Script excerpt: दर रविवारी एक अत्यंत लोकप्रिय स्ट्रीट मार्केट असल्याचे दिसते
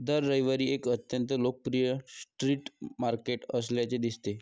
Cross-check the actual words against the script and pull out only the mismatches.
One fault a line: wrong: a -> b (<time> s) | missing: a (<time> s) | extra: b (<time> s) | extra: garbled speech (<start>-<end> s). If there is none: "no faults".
no faults